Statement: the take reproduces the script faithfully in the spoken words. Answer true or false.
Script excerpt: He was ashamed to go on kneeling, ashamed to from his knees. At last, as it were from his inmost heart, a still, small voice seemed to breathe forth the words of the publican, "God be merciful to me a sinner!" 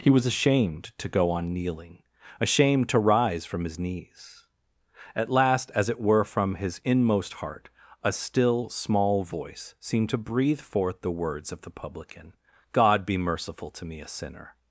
false